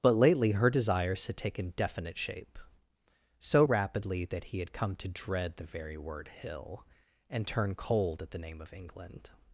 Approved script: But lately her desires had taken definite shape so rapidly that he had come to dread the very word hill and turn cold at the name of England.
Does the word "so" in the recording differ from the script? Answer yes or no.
no